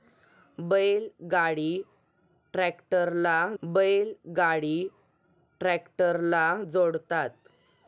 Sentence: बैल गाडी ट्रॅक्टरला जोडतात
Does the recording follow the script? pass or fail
fail